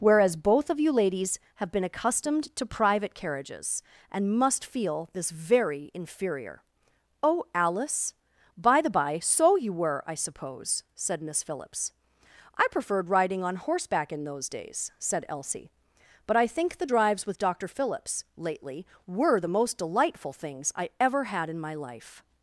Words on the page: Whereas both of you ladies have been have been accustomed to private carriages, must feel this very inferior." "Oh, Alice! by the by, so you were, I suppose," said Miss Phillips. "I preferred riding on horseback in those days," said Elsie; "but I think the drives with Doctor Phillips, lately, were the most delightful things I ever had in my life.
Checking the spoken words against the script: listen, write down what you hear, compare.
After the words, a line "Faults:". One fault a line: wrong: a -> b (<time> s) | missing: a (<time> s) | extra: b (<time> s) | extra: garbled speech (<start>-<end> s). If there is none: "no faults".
Whereas both of you ladies have been accustomed to private carriages, and must feel this very inferior." "Oh, Alice! by the by, so you were, I suppose," said Miss Phillips. "I preferred riding on horseback in those days," said Elsie; "but I think the drives with Doctor Phillips, lately, were the most delightful things I ever had in my life.
Faults:
missing: have been (1.8 s)
extra: and (4.1 s)